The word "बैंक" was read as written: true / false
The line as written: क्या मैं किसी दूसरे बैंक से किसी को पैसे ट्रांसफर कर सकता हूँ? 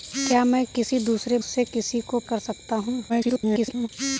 false